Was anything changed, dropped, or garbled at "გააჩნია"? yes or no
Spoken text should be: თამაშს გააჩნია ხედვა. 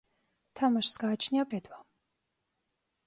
no